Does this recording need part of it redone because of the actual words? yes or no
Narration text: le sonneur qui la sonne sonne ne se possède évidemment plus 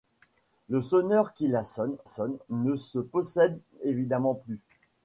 no